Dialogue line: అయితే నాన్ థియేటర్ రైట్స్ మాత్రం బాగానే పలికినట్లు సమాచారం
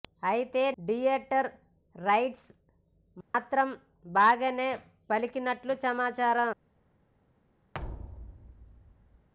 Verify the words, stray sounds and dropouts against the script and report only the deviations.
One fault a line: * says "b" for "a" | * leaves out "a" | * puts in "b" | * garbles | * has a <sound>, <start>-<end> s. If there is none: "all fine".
* leaves out "నాన్"
* has a dropout, 3.2-3.3 s
* has a thud, 7.7-9.3 s